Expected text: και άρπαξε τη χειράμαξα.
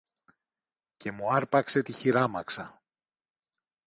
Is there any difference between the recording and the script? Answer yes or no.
yes